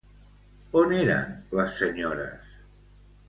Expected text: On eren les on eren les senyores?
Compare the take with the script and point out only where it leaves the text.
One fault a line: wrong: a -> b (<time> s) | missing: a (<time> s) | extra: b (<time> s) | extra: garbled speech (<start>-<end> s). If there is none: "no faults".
missing: on eren les (1.7 s)